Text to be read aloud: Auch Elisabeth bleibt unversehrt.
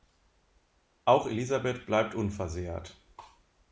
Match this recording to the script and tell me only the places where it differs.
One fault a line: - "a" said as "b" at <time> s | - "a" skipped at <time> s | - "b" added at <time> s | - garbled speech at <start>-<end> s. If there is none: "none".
none